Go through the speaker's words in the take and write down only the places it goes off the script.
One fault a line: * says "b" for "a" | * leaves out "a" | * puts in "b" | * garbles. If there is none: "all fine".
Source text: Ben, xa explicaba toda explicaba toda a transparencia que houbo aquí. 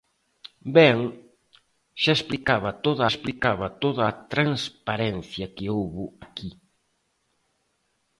all fine